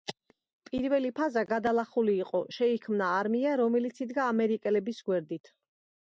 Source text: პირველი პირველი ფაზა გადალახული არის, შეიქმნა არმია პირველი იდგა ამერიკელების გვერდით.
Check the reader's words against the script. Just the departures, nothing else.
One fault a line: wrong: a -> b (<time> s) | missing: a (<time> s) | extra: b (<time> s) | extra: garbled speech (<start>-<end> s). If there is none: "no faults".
missing: პირველი (1.1 s)
wrong: არის -> იყო (2.2 s)
wrong: პირველი -> რომელიც (3.6 s)